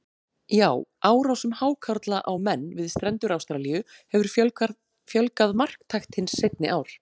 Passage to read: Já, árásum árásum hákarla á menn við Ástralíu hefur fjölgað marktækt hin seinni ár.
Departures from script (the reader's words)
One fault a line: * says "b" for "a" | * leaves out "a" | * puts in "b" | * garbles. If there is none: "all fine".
* leaves out "árásum"
* puts in "strendur"